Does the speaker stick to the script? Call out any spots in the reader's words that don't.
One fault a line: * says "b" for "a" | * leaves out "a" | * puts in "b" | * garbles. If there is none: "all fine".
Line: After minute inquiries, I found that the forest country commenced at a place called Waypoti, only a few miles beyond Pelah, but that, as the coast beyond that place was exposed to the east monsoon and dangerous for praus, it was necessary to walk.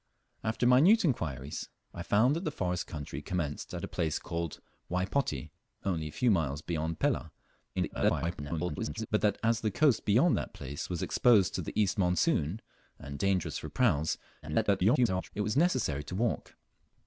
* garbles
* garbles